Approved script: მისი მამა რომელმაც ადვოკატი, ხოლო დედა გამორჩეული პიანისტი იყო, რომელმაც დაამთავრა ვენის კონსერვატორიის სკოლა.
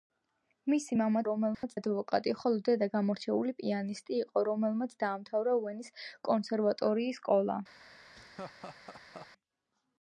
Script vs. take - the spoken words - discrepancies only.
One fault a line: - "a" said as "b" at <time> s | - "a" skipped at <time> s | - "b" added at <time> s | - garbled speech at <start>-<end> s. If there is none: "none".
none